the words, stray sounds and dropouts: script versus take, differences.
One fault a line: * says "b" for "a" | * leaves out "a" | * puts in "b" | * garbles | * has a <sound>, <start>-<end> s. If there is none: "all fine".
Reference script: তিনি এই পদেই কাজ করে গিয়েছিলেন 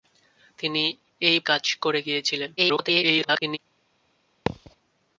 * leaves out "পদেই"
* garbles
* has a thud, 4.5-4.7 s